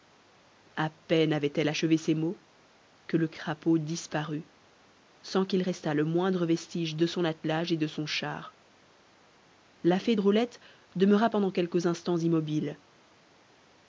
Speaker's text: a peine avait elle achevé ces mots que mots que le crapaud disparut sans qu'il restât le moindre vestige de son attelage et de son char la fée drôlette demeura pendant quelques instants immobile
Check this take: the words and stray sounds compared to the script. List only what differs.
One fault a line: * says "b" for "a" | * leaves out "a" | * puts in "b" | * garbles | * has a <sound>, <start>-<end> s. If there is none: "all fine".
* leaves out "mots que"